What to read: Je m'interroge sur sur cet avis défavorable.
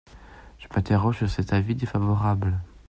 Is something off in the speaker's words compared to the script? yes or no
yes